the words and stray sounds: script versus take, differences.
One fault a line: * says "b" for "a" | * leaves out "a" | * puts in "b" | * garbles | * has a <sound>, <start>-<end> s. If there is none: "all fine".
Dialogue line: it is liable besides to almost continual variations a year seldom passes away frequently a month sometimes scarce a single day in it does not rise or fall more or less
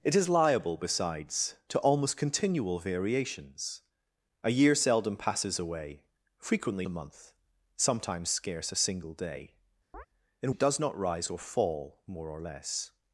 * has a chirp, 9.9-10.1 s